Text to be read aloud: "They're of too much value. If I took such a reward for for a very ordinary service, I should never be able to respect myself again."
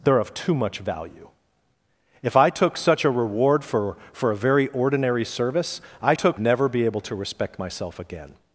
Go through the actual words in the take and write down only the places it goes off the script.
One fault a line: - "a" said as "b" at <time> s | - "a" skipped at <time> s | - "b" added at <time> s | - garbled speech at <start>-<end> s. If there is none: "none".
- "should" said as "took" at 6.1 s